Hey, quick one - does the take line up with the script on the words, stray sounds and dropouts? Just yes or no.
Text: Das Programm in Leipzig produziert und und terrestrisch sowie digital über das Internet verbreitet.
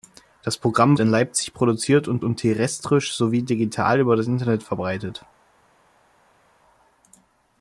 yes